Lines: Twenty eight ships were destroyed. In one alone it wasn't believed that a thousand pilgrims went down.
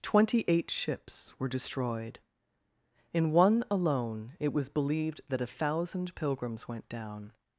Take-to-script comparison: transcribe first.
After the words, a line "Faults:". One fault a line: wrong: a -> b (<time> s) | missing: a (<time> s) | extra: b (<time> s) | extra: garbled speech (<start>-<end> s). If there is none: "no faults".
Twenty eight ships were destroyed. In one alone it was believed that a thousand pilgrims went down.
Faults:
wrong: wasn't -> was (4.5 s)